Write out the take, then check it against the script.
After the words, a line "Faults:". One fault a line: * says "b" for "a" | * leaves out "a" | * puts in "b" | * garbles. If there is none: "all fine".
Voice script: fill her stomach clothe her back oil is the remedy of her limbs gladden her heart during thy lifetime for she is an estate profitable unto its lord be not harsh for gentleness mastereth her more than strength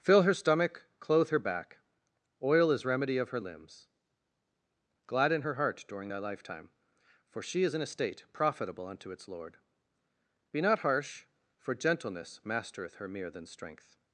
fill her stomach clothe her back oil is remedy of her limbs gladden her heart during thy lifetime for she is an estate profitable unto its lord be not harsh for gentleness mastereth her mere than strength
Faults:
* leaves out "the"
* says "mere" for "more"